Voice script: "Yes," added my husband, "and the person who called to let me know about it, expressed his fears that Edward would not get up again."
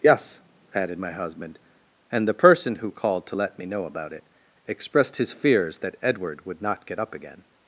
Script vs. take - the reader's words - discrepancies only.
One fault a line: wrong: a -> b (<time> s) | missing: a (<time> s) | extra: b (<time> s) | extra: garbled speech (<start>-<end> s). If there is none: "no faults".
no faults